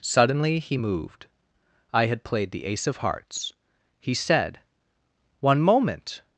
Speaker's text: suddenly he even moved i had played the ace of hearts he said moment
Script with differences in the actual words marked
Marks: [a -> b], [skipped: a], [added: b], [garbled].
suddenly he [skipped: even] moved i had played the ace of hearts he said [added: one] moment